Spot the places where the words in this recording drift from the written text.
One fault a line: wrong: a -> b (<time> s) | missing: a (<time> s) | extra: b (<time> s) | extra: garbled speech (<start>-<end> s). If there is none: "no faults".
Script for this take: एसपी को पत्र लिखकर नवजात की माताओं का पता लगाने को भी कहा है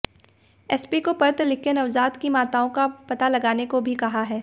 no faults